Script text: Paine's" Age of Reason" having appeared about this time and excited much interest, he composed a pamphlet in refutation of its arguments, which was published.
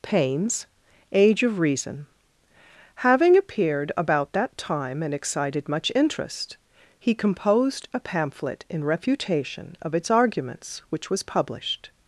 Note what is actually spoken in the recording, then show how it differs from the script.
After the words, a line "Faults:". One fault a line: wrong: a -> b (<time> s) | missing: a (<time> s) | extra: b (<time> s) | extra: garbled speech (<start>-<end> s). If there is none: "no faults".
Paine's" Age of Reason" having appeared about that time and excited much interest, he composed a pamphlet in refutation of its arguments, which was published.
Faults:
wrong: this -> that (4.3 s)